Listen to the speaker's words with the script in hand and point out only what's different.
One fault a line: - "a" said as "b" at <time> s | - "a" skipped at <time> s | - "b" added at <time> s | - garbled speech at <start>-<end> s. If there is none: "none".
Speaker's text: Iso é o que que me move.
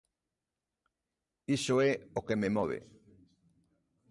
- "que" skipped at 2.4 s